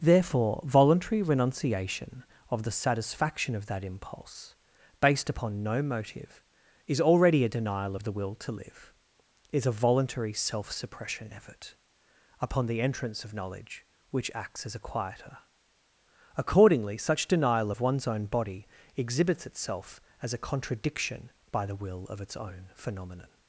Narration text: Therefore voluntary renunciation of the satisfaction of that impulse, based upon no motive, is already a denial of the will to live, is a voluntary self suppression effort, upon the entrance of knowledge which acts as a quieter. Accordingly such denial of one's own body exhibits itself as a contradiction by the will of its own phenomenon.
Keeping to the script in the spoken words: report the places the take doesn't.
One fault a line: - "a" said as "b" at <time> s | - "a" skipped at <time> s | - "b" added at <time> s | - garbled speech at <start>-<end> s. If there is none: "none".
none